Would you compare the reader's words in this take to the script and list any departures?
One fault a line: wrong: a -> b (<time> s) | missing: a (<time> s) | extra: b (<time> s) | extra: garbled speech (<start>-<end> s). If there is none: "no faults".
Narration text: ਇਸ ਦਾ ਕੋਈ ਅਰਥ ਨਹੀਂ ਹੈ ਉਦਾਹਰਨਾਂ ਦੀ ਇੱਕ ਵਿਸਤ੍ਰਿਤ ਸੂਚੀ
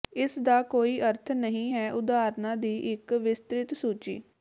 no faults